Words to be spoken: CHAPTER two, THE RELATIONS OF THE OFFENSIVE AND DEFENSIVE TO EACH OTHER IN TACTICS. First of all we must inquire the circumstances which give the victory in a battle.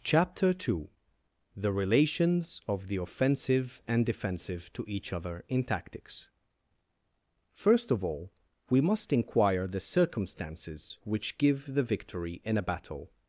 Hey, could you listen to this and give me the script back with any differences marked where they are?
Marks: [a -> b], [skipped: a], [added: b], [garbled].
CHAPTER two, THE RELATIONS OF THE OFFENSIVE AND DEFENSIVE TO EACH OTHER IN TACTICS. First of all we must inquire the circumstances which give the victory in a battle.